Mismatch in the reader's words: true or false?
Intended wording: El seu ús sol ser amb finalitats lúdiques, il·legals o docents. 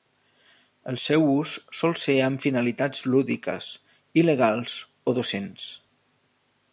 false